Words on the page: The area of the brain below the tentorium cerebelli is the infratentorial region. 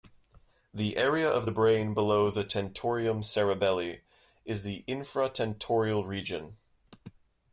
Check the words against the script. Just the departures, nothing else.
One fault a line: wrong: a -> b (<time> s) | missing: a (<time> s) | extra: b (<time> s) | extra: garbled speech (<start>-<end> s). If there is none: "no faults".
no faults